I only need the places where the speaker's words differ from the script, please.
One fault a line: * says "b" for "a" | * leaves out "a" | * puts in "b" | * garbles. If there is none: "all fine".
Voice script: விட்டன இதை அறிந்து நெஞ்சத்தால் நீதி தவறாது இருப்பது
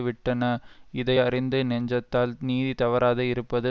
all fine